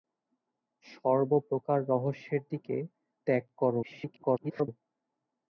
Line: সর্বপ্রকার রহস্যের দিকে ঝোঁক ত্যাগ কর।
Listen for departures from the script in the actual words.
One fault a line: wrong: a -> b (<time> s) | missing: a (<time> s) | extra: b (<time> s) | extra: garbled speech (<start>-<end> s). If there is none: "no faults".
missing: ঝোঁক (2.8 s)
extra: garbled speech (3.8-4.7 s)